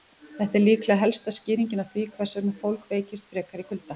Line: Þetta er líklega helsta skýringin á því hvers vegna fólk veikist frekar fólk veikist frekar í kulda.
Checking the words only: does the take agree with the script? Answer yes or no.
no